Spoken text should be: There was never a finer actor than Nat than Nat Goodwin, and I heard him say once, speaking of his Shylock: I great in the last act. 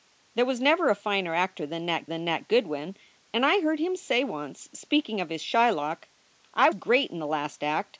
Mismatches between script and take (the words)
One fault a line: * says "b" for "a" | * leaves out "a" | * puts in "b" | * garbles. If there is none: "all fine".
all fine